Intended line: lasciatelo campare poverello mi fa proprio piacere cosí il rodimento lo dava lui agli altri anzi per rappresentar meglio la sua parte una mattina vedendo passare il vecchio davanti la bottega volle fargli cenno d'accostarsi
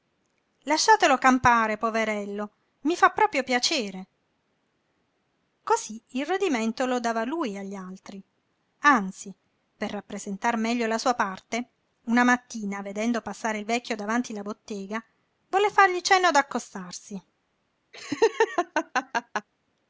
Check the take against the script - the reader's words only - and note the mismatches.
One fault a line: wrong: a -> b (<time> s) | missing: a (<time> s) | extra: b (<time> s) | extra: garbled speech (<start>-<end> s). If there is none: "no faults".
no faults